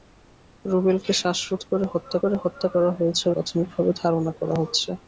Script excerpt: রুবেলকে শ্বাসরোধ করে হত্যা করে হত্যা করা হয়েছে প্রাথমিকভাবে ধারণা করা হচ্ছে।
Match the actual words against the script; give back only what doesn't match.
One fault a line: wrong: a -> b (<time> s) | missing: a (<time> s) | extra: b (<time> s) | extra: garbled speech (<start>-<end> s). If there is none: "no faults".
no faults